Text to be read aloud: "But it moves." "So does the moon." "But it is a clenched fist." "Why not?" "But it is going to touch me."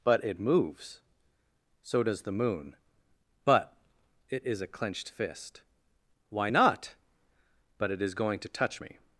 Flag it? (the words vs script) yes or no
no